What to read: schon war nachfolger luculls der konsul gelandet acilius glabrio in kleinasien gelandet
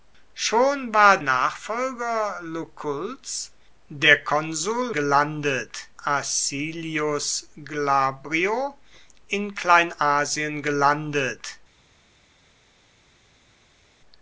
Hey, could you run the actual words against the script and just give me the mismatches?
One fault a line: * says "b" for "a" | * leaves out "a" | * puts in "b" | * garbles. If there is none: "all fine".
all fine